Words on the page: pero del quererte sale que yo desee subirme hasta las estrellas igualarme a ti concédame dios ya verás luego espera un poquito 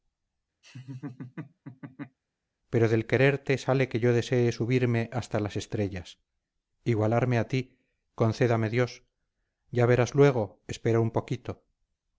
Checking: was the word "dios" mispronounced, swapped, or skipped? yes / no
no